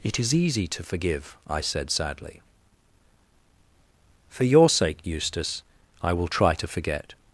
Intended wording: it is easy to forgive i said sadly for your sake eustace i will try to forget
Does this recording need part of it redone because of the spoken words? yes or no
no